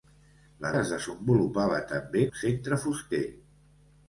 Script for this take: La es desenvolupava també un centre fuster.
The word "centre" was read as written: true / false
true